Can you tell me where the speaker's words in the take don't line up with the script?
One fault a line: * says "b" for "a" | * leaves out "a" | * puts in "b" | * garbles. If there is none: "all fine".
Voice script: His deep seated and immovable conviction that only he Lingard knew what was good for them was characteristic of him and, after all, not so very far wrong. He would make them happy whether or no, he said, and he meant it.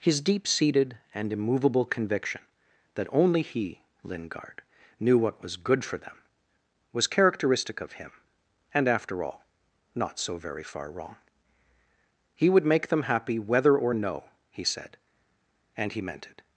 all fine